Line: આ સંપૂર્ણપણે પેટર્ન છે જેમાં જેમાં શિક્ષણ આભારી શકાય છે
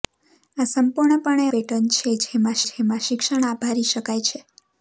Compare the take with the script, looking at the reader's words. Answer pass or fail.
pass